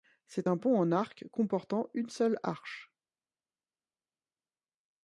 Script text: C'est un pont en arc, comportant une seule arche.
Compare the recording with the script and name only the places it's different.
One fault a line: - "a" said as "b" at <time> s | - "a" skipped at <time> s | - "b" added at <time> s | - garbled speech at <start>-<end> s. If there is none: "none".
none